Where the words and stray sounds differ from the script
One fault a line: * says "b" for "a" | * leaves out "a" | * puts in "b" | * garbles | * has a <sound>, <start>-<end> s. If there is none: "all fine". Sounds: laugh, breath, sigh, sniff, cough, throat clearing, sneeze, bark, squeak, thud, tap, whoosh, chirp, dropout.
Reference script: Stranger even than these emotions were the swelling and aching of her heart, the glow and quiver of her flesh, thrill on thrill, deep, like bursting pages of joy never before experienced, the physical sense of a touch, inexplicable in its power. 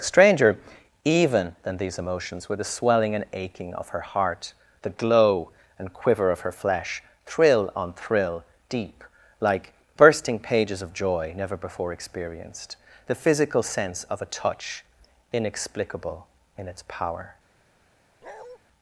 * has a bark, 18.2-18.6 s